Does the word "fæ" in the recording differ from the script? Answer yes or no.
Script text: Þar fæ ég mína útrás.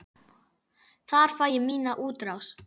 no